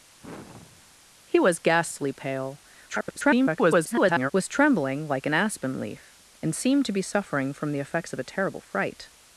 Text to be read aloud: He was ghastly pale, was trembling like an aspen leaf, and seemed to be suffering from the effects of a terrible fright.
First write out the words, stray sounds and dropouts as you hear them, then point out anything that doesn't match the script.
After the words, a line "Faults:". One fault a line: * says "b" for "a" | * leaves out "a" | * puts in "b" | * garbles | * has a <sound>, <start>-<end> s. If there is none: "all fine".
He was ghastly pale, [garbled] was trembling like an aspen leaf, and seemed to be suffering from the effects of a terrible fright.
Faults:
* has a sigh, 0.2-0.9 s
* garbles